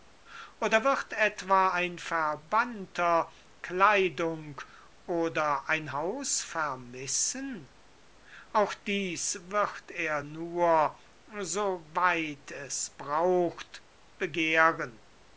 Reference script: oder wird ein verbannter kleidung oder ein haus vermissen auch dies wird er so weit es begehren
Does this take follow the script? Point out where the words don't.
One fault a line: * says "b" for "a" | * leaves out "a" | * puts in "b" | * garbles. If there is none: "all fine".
* puts in "etwa"
* puts in "nur"
* puts in "braucht"